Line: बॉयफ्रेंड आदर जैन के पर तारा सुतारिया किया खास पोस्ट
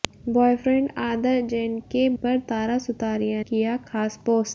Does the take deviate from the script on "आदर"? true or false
false